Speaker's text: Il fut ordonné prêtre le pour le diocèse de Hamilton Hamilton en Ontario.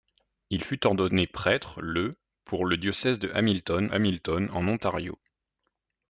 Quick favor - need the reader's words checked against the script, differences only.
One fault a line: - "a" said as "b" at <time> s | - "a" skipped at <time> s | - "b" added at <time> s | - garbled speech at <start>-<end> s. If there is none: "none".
none